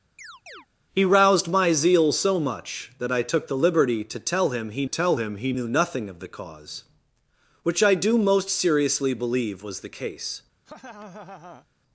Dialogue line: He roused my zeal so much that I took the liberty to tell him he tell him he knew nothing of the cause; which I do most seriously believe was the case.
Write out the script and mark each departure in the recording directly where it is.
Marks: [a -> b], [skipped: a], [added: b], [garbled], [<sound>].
[chirp] He roused my zeal so much that I took the liberty to tell him he tell him he knew nothing of the cause; which I do most seriously believe was the case. [laugh]